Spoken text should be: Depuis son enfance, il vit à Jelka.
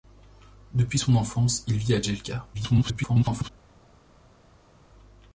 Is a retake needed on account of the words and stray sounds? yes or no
yes